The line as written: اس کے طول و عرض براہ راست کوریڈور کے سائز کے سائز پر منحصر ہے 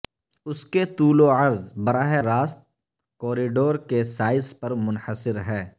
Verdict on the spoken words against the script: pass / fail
fail